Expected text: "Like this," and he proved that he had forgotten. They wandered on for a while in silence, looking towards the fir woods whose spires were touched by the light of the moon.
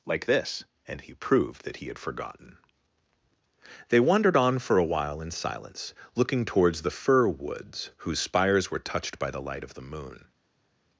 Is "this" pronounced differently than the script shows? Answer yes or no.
no